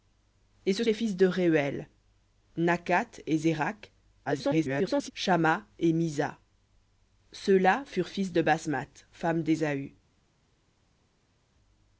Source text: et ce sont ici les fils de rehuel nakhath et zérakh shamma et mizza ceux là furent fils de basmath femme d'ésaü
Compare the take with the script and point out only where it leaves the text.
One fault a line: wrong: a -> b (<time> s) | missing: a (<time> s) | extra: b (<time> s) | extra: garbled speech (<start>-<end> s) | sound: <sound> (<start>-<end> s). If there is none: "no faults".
missing: sont ici (0.8 s)
extra: garbled speech (4.2-5.1 s)